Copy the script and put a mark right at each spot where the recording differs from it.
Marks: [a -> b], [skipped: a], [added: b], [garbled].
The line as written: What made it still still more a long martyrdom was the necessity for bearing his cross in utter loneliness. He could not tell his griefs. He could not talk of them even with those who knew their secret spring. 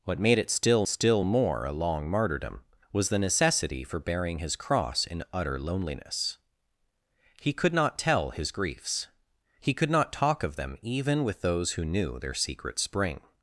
What made it still still more a long martyrdom was the necessity for bearing his cross in utter loneliness. He could not tell his griefs. He could not talk of them even with those who knew their secret spring.